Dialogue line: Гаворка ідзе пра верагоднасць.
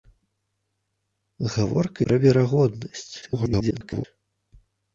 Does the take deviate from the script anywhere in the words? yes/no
yes